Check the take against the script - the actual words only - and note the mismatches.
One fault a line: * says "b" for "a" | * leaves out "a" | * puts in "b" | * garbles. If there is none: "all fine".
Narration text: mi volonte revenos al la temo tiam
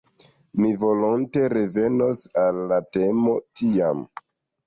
all fine